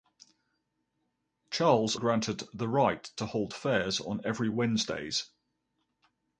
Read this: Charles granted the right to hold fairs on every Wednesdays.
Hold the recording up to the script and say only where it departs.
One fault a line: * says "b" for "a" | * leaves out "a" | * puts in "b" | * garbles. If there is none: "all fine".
all fine